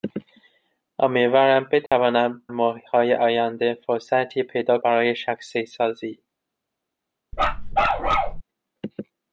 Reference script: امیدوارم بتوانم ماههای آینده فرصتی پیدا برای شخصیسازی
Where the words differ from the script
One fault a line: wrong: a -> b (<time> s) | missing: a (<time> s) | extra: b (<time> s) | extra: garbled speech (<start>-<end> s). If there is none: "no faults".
no faults